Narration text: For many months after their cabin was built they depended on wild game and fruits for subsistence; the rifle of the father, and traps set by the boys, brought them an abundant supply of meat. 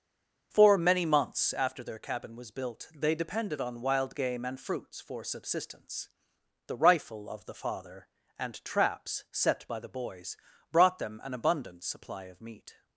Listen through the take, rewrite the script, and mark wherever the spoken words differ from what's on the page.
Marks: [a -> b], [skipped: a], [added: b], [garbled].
For many months after their cabin was built they depended on wild game and fruits for subsistence; the rifle of the father, and traps set by the boys, brought them an abundant supply of meat.